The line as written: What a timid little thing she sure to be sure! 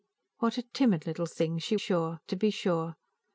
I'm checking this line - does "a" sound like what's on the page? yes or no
yes